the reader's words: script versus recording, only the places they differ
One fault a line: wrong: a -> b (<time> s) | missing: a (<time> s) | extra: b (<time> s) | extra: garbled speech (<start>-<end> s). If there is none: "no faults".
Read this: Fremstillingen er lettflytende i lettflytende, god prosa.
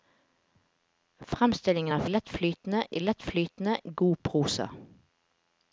no faults